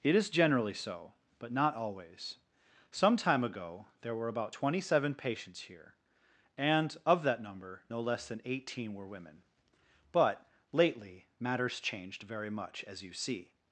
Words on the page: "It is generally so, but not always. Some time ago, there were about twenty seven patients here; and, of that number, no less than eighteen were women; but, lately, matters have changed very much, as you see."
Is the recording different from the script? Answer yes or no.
yes